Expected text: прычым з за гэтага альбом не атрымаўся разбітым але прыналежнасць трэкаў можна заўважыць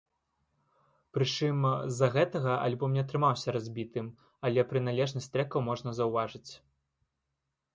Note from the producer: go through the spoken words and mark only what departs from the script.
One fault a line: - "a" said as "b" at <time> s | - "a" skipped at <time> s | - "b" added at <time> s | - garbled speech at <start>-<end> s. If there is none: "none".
none